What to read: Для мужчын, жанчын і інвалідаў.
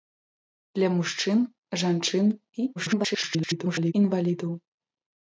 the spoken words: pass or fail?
fail